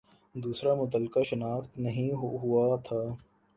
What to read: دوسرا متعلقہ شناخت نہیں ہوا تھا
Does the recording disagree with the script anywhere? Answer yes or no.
no